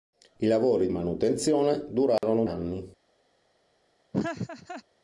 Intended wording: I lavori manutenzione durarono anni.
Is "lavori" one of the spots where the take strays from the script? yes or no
no